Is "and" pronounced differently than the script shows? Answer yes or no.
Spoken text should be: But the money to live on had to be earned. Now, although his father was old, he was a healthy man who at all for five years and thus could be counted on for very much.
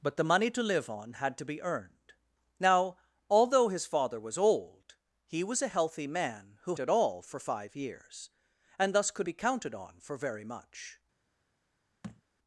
no